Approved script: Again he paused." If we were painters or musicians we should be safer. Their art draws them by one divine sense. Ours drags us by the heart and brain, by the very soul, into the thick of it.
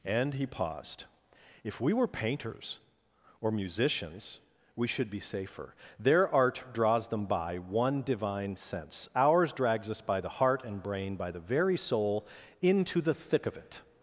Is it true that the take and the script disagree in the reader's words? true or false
true